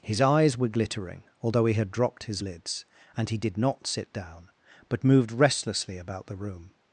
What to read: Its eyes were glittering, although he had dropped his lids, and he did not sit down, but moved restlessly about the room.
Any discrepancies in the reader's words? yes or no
yes